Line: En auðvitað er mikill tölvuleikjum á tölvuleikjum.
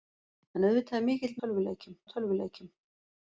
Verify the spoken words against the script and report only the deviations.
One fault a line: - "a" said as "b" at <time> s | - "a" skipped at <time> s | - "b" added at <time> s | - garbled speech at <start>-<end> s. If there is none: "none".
none